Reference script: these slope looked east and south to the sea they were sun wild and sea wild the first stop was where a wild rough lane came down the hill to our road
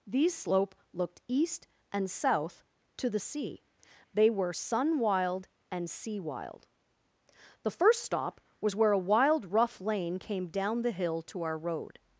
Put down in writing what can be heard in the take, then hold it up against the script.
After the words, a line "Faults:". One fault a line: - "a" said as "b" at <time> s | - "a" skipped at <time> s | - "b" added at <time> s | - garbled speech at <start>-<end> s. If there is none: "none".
these slope looked east and south to the sea they were sun wild and sea wild the first stop was where a wild rough lane came down the hill to our road
Faults:
none